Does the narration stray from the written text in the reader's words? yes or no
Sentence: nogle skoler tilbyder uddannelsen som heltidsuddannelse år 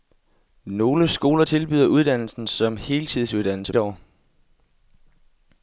no